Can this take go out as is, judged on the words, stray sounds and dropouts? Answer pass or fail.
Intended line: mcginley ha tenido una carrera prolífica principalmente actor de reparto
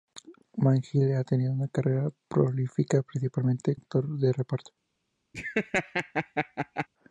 fail